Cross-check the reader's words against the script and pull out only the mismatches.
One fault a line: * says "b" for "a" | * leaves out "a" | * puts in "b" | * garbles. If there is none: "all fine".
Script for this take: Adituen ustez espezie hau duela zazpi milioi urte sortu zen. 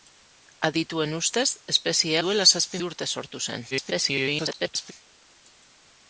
* leaves out "hau"
* leaves out "milioi"
* garbles